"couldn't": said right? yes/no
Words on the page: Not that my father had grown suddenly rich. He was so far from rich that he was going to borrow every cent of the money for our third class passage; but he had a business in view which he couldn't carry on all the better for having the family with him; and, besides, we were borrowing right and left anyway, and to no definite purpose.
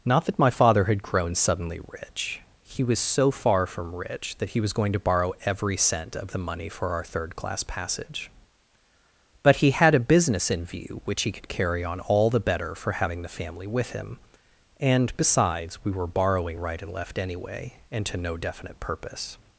no